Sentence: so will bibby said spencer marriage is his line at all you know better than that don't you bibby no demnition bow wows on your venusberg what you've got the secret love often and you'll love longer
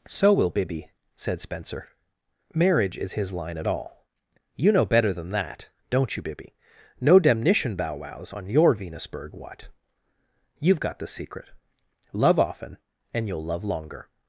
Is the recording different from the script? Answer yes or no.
no